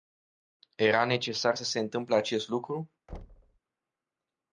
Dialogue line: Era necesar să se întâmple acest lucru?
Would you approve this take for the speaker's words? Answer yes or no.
yes